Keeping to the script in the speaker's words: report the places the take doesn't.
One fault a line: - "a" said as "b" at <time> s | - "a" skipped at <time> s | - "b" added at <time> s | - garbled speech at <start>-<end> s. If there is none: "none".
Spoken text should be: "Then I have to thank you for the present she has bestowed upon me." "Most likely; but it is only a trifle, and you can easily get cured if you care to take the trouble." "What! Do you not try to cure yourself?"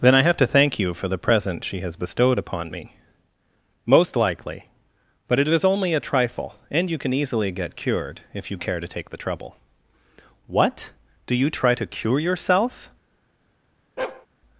- "not" skipped at 11.5 s